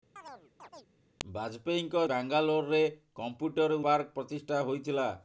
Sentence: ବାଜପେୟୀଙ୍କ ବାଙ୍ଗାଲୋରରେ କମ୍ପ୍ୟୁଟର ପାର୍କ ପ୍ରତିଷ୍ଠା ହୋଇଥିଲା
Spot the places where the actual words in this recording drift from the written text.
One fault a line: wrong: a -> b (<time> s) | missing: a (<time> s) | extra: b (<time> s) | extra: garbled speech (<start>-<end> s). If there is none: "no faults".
no faults